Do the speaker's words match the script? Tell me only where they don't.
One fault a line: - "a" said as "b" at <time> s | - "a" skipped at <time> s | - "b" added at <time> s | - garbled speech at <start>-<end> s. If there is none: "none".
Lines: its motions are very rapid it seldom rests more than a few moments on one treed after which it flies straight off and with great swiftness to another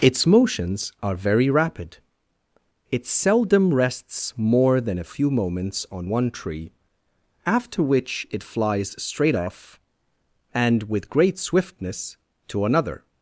- "treed" said as "tree" at 6.3 s